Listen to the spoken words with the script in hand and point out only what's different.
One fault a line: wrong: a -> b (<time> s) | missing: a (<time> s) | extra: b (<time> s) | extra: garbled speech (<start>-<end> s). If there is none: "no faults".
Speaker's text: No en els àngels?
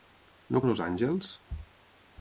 no faults